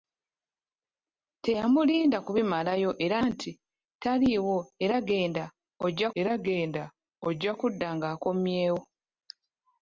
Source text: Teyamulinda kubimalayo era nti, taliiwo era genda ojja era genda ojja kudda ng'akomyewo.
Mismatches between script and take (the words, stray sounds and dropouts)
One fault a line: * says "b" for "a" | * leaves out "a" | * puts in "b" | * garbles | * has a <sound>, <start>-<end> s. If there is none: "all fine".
all fine